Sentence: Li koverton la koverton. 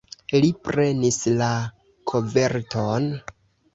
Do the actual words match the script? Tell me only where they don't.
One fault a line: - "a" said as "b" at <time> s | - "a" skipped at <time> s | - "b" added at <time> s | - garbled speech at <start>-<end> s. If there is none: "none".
- "koverton" said as "prenis" at 0.7 s